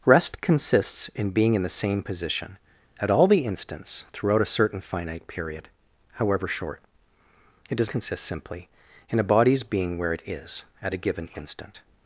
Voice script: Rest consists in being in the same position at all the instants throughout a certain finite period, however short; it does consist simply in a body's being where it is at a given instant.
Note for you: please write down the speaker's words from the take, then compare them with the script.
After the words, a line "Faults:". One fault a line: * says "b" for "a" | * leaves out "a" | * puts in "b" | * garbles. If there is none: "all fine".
Rest consists in being in the same position at all the instants throughout a certain finite period, however short; it does consist simply in a body's being where it is at a given instant.
Faults:
all fine